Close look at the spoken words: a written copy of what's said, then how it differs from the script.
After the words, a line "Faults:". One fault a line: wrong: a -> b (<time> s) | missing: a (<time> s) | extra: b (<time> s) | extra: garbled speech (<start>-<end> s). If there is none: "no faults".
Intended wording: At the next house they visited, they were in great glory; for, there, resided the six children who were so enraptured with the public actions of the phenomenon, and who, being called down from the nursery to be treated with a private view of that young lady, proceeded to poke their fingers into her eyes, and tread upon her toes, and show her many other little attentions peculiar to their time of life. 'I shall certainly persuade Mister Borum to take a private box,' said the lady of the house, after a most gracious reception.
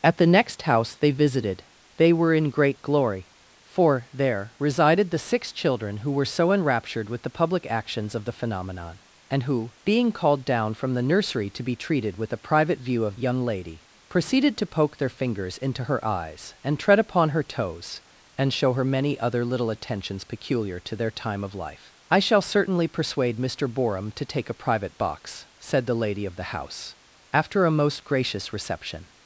At the next house they visited, they were in great glory; for, there, resided the six children who were so enraptured with the public actions of the phenomenon, and who, being called down from the nursery to be treated with a private view of young lady, proceeded to poke their fingers into her eyes, and tread upon her toes, and show her many other little attentions peculiar to their time of life. 'I shall certainly persuade Mister Borum to take a private box,' said the lady of the house, after a most gracious reception.
Faults:
missing: that (13.2 s)